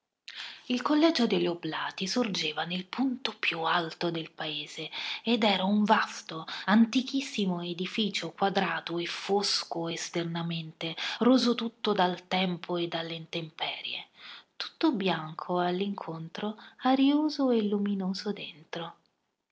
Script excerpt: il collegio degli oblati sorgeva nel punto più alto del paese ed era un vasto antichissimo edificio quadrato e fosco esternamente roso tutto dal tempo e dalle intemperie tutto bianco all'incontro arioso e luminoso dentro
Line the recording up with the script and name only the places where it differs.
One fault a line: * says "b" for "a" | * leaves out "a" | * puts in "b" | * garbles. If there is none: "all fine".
all fine